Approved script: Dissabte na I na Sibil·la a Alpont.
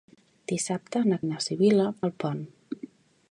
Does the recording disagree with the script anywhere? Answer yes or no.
no